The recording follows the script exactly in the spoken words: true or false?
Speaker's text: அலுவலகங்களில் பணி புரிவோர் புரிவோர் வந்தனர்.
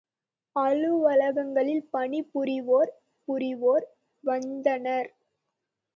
true